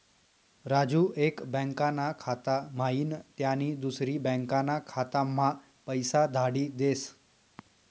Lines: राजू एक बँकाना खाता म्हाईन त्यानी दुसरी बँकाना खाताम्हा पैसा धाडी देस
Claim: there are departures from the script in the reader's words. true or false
false